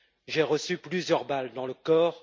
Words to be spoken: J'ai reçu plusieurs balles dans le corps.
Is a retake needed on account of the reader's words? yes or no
no